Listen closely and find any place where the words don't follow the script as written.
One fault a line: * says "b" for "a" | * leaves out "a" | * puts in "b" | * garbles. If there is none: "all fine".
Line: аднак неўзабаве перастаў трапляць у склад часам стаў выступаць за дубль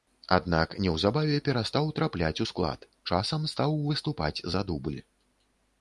all fine